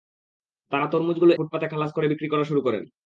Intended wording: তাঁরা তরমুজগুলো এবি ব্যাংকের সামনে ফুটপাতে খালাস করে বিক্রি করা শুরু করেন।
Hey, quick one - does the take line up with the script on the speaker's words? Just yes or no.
no